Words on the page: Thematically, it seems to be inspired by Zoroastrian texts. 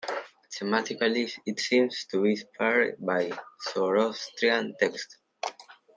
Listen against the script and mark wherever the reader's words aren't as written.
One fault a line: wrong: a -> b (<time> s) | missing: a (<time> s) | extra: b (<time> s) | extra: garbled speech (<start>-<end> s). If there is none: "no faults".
no faults